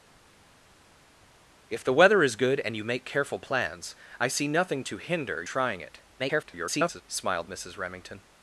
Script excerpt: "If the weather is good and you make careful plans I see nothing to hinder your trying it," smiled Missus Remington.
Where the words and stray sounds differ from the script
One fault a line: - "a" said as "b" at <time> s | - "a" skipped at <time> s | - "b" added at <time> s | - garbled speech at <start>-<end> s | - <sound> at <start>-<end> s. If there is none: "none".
- "your" skipped at 5.4 s
- garbled speech at 6.2-7.0 s